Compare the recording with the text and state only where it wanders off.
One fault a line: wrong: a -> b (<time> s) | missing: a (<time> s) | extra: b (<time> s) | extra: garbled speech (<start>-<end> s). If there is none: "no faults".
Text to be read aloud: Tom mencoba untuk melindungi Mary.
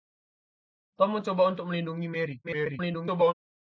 extra: garbled speech (2.4-3.3 s)